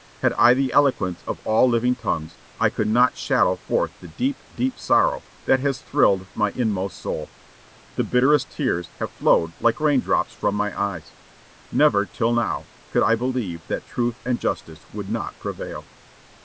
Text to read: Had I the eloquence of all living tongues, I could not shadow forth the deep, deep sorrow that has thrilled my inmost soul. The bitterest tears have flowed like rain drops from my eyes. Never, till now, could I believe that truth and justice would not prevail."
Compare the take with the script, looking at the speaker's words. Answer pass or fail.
pass